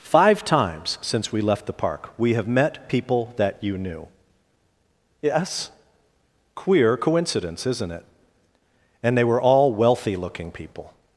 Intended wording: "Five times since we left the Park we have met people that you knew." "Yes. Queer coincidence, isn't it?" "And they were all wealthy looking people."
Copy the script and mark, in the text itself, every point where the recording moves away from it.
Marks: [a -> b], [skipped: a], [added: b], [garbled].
"Five times since we left the Park we have met people that you knew." "Yes. Queer coincidence, isn't it?" "And they were all wealthy looking people."